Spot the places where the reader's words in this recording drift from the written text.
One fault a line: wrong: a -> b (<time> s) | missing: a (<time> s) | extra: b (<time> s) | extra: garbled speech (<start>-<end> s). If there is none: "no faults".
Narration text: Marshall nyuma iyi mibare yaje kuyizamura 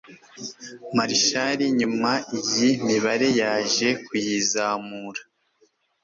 no faults